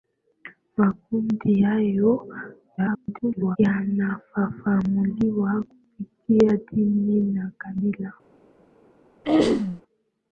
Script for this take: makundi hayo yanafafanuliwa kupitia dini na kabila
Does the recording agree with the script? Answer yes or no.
no